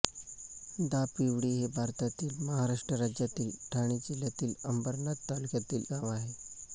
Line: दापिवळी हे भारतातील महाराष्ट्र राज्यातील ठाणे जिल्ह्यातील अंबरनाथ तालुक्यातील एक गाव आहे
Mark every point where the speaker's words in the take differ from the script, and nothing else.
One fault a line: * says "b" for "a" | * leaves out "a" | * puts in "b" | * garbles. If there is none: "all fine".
* leaves out "एक"